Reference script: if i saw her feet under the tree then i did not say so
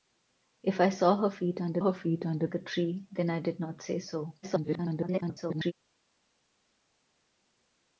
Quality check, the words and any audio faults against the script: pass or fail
fail